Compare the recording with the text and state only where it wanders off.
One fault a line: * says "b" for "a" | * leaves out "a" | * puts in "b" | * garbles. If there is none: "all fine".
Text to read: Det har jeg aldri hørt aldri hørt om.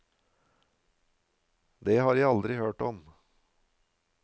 * leaves out "aldri hørt"